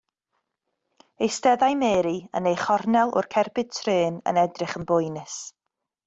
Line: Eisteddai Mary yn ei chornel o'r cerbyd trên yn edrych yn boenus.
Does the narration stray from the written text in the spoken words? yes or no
no